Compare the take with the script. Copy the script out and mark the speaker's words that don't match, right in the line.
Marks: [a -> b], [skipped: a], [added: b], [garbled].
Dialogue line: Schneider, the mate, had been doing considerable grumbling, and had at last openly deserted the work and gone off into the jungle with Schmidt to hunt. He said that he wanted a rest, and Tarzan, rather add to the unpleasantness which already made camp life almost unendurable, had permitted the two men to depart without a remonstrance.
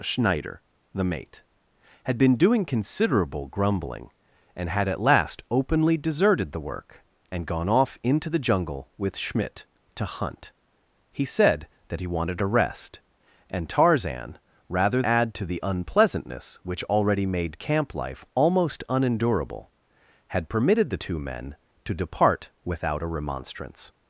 Schneider, the mate, had been doing considerable grumbling, and had at last openly deserted the work and gone off into the jungle with Schmidt to hunt. He said that he wanted a rest, and Tarzan, rather add to the unpleasantness which already made camp life almost unendurable, had permitted the two men to depart without a remonstrance.